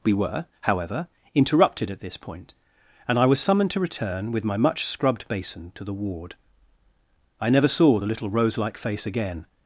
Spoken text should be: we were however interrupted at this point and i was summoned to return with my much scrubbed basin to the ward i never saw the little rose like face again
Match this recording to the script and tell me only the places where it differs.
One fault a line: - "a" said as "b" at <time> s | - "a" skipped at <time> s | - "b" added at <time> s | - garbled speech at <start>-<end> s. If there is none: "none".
none